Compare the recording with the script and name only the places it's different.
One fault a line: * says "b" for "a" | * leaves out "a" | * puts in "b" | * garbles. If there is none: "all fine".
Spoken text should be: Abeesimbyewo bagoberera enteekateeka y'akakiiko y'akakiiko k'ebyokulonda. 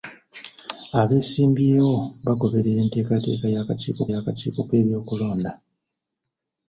all fine